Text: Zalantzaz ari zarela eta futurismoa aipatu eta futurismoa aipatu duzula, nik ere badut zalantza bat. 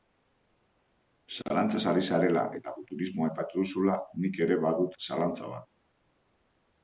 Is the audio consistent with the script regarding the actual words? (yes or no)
no